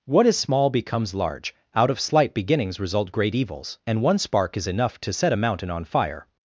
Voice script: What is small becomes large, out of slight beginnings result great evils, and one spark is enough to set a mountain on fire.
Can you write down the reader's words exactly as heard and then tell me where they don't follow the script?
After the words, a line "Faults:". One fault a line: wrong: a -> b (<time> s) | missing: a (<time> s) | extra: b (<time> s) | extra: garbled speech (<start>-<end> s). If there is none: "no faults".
What is small becomes large, out of slight beginnings result great evils, and one spark is enough to set a mountain on fire.
Faults:
no faults